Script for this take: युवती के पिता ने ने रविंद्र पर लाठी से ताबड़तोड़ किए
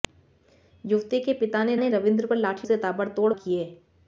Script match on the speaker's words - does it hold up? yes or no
yes